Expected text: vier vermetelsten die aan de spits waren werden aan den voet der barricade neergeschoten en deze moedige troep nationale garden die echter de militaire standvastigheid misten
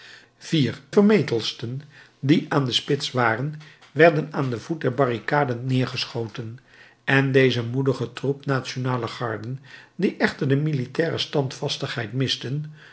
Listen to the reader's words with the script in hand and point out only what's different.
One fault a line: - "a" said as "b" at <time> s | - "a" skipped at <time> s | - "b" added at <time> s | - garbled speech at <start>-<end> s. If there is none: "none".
none